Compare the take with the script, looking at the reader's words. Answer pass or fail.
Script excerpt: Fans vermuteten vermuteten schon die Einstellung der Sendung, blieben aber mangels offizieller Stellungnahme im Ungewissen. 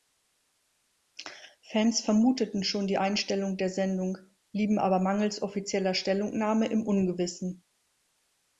fail